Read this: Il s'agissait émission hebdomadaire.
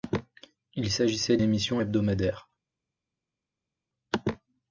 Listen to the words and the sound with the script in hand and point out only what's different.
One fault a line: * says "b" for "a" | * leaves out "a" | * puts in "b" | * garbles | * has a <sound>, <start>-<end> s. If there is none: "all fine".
all fine